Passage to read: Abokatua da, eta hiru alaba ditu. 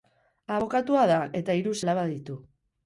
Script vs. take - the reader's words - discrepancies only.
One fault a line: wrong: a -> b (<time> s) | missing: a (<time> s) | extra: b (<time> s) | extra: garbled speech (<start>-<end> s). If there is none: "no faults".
no faults